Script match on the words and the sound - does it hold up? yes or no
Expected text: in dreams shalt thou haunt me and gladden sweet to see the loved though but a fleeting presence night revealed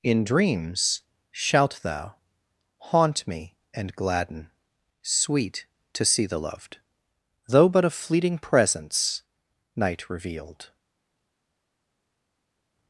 yes